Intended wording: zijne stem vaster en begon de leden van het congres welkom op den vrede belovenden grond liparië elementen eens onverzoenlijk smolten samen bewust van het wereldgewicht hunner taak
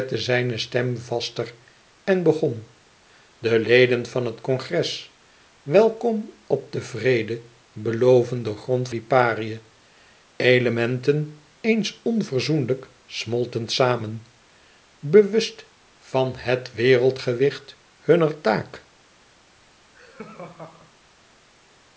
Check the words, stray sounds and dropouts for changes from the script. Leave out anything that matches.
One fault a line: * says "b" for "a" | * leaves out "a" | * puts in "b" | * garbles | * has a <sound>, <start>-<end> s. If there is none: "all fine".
* has a laugh, 19.9-21.0 s